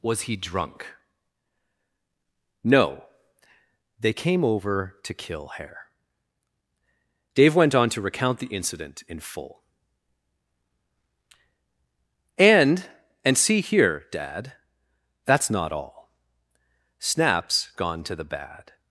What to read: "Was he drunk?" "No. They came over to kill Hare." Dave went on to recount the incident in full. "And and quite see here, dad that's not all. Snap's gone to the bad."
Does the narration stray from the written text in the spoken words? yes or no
yes